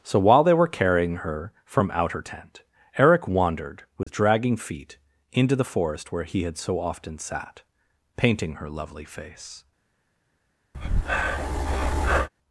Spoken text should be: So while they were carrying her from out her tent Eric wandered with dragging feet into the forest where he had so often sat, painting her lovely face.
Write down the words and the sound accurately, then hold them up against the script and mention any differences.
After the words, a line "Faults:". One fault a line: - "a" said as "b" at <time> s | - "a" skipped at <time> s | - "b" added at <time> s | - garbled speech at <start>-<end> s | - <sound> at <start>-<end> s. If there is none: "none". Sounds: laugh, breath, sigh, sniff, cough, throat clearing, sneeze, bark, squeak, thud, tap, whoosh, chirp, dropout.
So while they were carrying her from out her tent Eric wandered with dragging feet into the forest where he had so often sat, painting her lovely face.
Faults:
- dropout at 4.0-4.1 s
- breath at 10.7-12.3 s